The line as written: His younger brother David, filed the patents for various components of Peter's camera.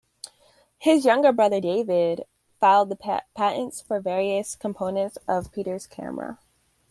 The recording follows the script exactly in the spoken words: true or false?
true